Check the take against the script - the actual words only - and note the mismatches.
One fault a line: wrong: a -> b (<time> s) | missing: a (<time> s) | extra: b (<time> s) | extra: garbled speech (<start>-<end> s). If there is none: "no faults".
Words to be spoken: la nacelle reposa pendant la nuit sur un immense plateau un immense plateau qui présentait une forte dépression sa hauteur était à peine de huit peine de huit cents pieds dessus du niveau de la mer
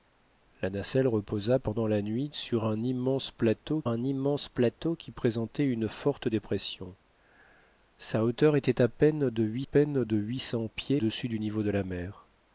no faults